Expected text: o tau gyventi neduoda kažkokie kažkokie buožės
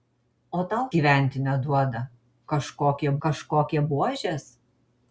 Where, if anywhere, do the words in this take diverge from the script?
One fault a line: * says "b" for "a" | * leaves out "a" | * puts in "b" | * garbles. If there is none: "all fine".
all fine